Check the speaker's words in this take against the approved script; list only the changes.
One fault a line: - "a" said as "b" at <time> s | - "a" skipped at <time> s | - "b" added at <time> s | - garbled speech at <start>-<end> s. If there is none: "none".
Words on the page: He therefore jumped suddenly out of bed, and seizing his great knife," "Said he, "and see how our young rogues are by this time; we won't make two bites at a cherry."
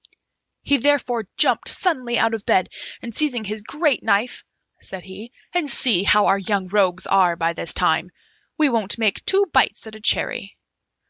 none